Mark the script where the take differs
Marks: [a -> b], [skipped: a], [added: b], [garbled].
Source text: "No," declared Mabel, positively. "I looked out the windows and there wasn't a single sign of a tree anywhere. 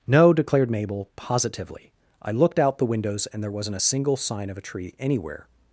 "No," declared Mabel, positively. "I looked out the windows and there wasn't a single sign of a tree anywhere.